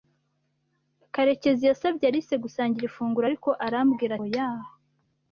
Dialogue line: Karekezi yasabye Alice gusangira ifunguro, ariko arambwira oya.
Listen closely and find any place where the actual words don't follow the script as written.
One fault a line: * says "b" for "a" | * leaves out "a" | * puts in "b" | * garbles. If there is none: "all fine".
all fine